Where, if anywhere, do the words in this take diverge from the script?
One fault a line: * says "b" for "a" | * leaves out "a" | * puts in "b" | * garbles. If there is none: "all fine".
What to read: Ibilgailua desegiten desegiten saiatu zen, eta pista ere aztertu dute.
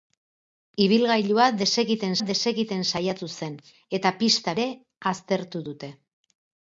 all fine